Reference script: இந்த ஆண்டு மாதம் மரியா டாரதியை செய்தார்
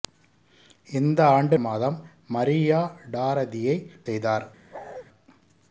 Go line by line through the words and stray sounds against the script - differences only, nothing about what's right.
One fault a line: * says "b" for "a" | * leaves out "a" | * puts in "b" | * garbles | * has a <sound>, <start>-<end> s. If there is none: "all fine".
* has a bark, 4.7-5.1 s